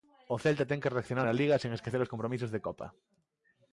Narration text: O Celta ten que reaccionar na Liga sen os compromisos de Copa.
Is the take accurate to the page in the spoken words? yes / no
no